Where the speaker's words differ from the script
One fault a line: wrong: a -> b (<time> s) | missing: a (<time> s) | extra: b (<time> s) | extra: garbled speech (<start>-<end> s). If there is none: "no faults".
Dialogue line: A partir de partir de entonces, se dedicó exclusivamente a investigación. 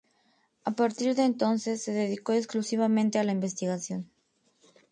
missing: partir de (1.2 s)
extra: la (3.2 s)